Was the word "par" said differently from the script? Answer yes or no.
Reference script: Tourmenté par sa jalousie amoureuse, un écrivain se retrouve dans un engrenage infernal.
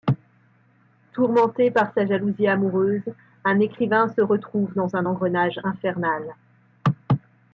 no